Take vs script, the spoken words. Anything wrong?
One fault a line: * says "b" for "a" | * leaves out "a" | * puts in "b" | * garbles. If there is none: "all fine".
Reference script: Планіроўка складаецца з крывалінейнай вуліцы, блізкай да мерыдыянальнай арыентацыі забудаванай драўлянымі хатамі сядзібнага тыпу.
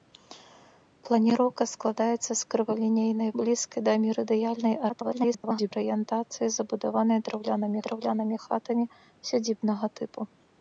* leaves out "вуліцы"
* garbles
* puts in "драўлянымі"